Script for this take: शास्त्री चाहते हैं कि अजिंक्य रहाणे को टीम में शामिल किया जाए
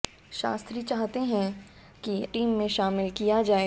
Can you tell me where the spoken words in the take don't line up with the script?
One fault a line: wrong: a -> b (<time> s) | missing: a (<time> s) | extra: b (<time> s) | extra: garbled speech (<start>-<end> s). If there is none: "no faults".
missing: अजिंक्य रहाणे को (2.2 s)